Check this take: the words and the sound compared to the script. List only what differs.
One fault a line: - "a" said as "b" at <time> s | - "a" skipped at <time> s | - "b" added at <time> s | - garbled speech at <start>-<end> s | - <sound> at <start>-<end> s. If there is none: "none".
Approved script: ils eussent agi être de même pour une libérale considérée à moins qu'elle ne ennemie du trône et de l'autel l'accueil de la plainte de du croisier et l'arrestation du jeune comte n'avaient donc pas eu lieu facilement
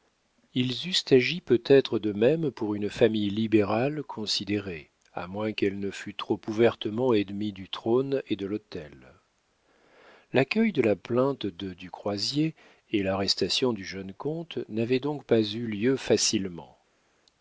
- "peut" added at 1.4 s
- "famille" added at 2.9 s
- "fût trop ouvertement" added at 5.9 s